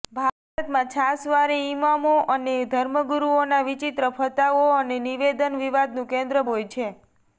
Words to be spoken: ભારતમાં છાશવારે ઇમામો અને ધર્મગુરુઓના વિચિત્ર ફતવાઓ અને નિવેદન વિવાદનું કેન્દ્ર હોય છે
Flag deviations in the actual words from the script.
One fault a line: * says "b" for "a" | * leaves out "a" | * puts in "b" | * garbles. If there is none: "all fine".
all fine